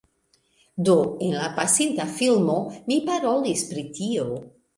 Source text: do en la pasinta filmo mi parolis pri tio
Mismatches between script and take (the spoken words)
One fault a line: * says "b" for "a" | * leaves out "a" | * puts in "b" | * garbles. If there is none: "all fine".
all fine